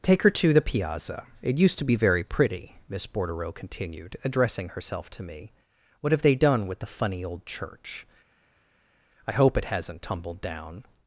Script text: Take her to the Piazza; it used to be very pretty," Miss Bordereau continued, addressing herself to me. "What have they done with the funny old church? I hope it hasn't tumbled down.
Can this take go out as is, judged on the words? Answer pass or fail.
pass